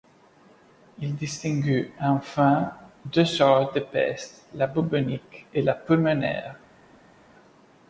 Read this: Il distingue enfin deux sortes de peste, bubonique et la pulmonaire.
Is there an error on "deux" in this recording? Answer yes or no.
no